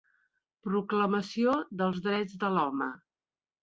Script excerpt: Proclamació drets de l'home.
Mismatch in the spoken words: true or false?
true